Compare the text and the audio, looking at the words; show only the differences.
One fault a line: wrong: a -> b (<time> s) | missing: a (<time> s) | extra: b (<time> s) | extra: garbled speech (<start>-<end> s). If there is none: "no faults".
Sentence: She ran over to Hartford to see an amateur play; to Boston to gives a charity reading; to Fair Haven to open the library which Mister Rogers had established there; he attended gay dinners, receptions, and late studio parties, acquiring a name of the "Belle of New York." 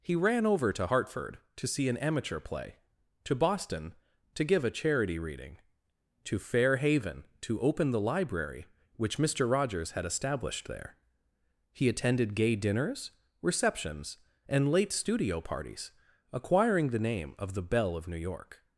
wrong: She -> He (0.0 s)
wrong: gives -> give (4.4 s)
wrong: a -> the (16.9 s)